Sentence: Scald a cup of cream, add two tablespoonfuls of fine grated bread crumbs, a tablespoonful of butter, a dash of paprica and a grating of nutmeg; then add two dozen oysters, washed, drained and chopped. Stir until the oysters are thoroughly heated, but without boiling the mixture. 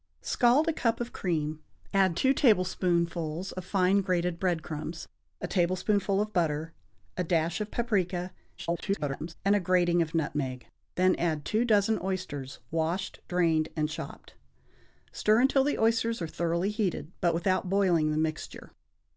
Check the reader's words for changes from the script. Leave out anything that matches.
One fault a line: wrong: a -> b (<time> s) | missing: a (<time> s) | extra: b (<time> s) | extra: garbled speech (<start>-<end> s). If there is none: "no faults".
extra: garbled speech (8.6-9.3 s)